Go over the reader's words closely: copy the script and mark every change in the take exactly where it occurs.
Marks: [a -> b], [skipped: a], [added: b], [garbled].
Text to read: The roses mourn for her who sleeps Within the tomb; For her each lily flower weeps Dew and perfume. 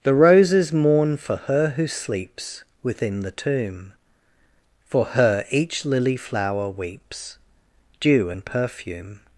The roses mourn for her who sleeps Within the tomb; For her each lily flower weeps Dew and perfume.